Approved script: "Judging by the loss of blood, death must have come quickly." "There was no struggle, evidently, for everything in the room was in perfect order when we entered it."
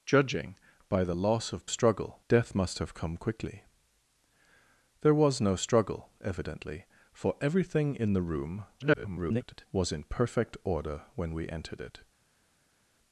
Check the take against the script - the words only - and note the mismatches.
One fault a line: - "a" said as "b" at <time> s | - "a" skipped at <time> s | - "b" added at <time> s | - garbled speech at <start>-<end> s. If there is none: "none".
- "blood" said as "struggle" at 1.7 s
- garbled speech at 8.8-9.7 s